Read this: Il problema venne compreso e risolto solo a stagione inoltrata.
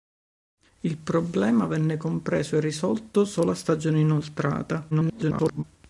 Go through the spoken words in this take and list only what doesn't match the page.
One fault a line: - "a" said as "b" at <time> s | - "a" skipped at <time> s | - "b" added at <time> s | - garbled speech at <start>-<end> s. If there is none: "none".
- garbled speech at 4.9-5.6 s